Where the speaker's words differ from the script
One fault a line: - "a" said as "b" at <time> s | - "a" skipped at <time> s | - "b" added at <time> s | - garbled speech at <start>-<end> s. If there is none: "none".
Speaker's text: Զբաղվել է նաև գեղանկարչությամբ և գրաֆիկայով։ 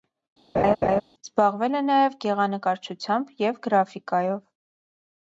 none